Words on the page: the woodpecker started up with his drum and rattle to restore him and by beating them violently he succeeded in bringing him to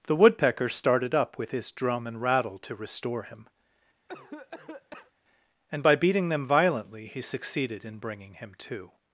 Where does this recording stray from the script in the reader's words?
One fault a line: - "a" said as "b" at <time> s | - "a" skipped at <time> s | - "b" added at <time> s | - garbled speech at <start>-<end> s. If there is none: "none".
none